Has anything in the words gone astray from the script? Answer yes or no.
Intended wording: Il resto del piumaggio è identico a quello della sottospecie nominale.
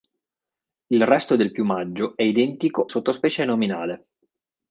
yes